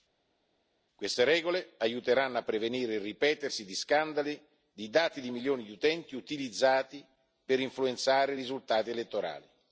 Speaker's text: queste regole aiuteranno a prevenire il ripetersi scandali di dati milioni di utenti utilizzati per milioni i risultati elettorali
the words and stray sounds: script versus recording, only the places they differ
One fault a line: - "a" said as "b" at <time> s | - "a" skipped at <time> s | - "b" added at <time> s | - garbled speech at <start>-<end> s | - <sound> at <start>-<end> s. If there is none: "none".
- "di" added at 3.6 s
- "di" added at 5.2 s
- "milioni" said as "influenzare" at 7.6 s